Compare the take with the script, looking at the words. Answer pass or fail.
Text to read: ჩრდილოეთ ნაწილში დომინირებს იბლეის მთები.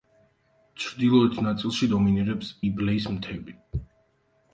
pass